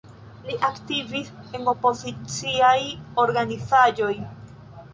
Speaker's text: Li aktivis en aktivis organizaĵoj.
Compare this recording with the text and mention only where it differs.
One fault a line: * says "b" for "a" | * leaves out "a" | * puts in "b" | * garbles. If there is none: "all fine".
* says "opoziciaj" for "aktivis"